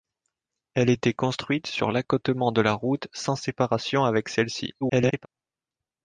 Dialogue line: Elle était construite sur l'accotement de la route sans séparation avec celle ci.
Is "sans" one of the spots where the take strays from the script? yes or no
no